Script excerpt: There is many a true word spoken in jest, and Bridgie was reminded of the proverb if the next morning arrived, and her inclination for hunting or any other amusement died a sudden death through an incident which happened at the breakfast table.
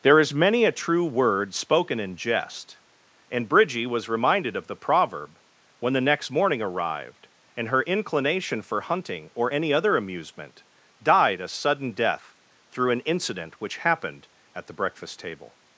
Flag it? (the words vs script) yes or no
yes